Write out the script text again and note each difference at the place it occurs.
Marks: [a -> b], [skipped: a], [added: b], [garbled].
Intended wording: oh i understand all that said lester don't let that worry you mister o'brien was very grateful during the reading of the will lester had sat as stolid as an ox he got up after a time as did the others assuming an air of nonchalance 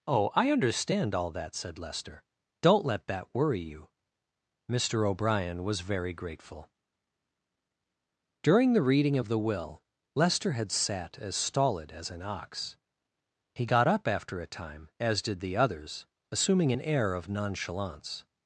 oh i understand all that said lester don't let that worry you mister o'brien was very grateful during the reading of the will lester had sat as stolid as an ox he got up after a time as did the others assuming an air of nonchalance